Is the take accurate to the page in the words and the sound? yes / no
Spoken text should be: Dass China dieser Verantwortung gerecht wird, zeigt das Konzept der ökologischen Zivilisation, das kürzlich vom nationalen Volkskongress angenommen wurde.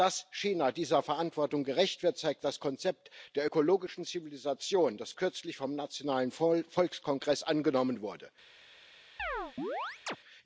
no